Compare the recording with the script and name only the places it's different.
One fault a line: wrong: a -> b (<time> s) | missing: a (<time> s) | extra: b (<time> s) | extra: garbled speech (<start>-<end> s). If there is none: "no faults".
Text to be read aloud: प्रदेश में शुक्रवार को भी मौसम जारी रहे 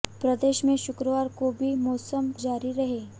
no faults